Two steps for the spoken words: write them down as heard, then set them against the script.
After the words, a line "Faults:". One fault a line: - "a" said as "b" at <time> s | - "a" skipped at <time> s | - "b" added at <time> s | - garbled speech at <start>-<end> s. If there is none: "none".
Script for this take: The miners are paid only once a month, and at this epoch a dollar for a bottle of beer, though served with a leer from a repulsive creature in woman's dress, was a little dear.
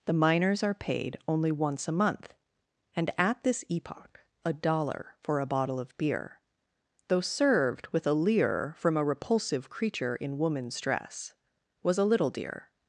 The miners are paid only once a month, and at this epoch a dollar for a bottle of beer, though served with a leer from a repulsive creature in woman's dress, was a little dear.
Faults:
none